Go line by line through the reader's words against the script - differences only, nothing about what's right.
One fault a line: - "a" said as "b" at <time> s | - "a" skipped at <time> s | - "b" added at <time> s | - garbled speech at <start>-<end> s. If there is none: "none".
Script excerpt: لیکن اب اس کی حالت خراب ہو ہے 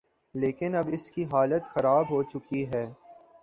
- "چکی" added at 2.2 s